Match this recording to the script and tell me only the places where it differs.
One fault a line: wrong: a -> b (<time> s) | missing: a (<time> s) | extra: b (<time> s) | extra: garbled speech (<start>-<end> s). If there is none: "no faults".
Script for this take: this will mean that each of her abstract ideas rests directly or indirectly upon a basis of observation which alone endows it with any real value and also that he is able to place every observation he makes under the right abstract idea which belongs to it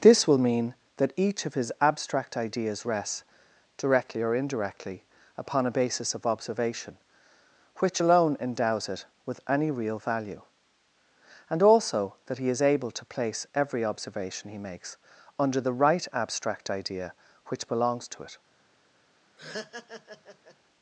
wrong: her -> his (1.5 s)